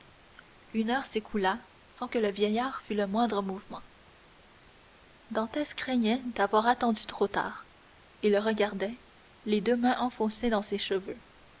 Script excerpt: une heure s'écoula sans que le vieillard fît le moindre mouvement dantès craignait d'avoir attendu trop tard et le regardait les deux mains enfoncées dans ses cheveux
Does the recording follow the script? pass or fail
pass